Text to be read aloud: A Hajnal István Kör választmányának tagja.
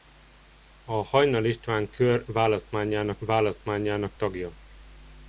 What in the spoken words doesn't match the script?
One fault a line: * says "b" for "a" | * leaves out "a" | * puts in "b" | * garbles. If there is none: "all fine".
* puts in "választmányának"